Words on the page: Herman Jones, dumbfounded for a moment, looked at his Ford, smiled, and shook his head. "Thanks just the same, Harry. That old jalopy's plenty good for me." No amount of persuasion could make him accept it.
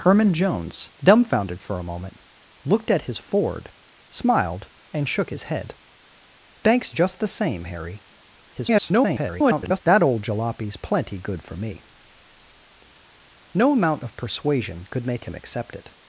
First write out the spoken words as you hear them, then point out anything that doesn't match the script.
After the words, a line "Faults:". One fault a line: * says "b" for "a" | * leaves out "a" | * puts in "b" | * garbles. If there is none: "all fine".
Herman Jones, dumbfounded for a moment, looked at his Ford, smiled, and shook his head. "Thanks just the same, Harry. [garbled] That old jalopy's plenty good for me." No amount of persuasion could make him accept it.
Faults:
* garbles